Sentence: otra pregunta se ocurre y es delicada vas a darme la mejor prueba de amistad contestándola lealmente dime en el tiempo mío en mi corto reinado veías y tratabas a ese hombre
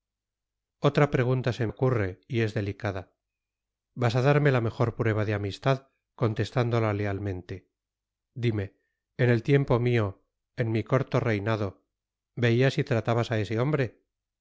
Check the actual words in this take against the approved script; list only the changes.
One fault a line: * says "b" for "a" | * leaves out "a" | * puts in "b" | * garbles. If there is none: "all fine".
all fine